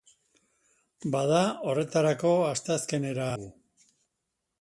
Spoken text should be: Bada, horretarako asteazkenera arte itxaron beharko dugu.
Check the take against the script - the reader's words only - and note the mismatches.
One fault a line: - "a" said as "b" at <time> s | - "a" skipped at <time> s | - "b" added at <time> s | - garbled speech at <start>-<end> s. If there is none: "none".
- "arte itxaron beharko" skipped at 3.3 s